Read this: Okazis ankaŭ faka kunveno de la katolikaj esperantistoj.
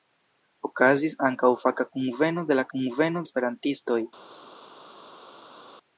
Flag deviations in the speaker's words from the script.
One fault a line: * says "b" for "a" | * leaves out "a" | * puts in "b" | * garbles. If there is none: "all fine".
* says "kunveno" for "katolikaj"